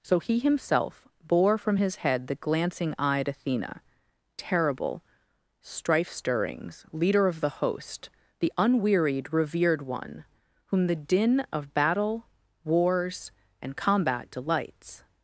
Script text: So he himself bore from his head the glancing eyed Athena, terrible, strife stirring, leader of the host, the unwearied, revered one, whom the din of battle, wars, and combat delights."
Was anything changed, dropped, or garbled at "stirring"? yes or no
yes